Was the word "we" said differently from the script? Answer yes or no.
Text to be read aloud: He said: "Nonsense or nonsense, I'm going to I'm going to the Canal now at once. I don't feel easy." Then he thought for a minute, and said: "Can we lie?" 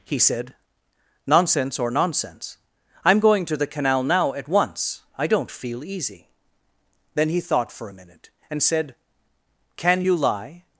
yes